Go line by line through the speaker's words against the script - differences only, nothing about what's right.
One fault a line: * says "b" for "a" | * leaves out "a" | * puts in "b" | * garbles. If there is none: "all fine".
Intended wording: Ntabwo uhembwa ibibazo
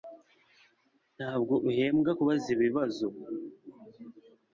* puts in "kubaza"